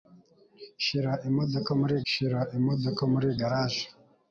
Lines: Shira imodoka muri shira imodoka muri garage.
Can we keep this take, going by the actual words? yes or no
yes